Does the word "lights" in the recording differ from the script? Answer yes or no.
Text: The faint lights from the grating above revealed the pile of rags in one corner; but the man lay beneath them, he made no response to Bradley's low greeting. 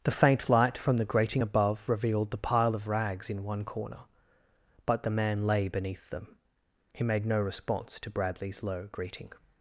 yes